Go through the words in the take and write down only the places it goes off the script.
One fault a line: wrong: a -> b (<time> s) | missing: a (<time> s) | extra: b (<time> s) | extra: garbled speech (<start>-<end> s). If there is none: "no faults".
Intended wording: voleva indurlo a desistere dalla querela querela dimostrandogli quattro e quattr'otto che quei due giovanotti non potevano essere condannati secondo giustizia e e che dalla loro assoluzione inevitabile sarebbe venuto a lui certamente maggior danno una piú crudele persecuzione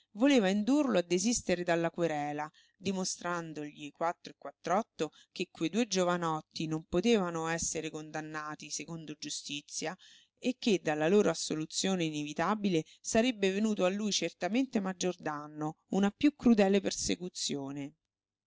missing: querela (2.5 s)
missing: e (10.6 s)